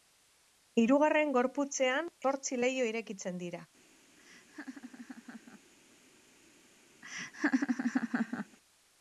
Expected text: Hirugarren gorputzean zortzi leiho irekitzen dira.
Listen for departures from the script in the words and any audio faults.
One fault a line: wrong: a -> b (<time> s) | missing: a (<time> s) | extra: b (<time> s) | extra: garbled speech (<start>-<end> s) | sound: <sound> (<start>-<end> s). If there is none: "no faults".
sound: laugh (4.2-5.7 s)
sound: laugh (7.0-8.6 s)